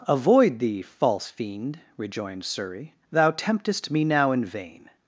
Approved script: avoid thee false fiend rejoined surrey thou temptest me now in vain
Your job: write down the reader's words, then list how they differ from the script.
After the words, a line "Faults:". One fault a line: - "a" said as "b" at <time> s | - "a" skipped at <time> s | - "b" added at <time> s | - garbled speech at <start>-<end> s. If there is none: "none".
avoid thee false fiend rejoined surrey thou temptest me now in vain
Faults:
none